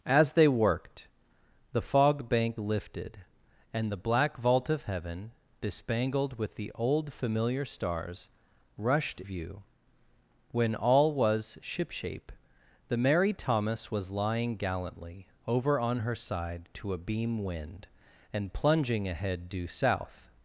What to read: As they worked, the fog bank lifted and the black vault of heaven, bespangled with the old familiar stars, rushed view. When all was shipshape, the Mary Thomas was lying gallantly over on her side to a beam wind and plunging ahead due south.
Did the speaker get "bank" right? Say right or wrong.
right